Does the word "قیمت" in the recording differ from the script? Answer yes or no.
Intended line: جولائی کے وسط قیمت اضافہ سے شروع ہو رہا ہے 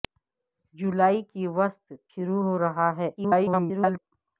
yes